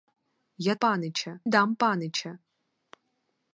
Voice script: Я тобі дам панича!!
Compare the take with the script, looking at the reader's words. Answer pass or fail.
fail